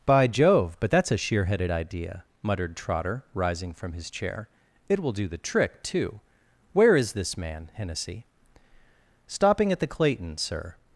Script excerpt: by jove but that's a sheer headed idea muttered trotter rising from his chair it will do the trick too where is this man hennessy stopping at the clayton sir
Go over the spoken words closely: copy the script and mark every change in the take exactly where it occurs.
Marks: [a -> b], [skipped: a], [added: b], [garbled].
by jove but that's a sheer headed idea muttered trotter rising from his chair it will do the trick too where is this man hennessy stopping at the clayton sir